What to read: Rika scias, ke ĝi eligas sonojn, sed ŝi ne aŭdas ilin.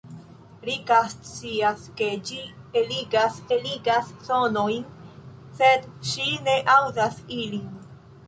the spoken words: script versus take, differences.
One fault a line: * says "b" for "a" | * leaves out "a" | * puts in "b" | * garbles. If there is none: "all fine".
* puts in "eligas"